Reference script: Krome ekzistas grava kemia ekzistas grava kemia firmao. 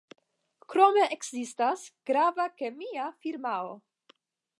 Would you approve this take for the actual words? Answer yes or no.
no